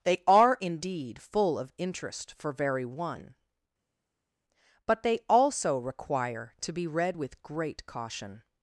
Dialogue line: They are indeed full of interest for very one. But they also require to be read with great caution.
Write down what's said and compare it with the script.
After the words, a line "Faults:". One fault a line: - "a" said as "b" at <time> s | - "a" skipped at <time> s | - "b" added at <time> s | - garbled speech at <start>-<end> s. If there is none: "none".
They are indeed full of interest for very one. But they also require to be read with great caution.
Faults:
none